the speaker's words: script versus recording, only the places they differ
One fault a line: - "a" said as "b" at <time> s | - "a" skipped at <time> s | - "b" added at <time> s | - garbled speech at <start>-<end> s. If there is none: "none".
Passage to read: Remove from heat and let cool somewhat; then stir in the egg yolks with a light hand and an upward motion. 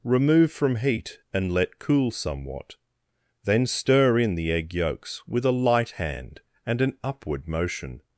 none